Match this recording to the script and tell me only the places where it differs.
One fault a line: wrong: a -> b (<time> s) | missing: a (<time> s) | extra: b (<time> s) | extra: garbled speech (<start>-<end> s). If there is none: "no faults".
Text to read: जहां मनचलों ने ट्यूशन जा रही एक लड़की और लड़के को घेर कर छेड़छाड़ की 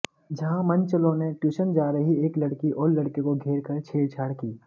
no faults